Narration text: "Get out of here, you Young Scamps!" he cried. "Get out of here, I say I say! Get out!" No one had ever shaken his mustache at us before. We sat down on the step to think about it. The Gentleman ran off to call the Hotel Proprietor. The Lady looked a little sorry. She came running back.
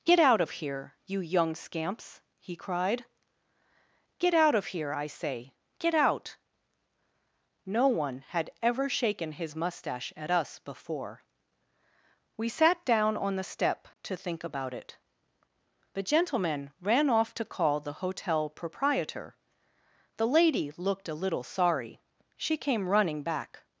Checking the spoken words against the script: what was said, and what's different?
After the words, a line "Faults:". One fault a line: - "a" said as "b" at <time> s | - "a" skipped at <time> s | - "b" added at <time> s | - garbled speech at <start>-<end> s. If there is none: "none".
"Get out of here, you Young Scamps!" he cried. "Get out of here, I say! Get out!" No one had ever shaken his mustache at us before. We sat down on the step to think about it. The Gentleman ran off to call the Hotel Proprietor. The Lady looked a little sorry. She came running back.
Faults:
- "I say" skipped at 5.5 s